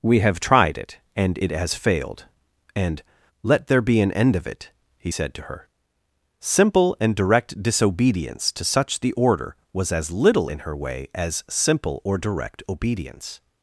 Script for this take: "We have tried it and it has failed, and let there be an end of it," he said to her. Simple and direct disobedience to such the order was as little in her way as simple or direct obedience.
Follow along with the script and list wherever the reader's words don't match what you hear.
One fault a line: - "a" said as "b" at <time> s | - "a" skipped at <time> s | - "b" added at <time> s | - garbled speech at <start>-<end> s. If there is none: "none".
none